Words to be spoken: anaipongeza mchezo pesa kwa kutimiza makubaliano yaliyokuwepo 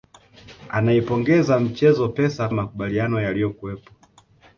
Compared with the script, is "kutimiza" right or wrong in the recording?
wrong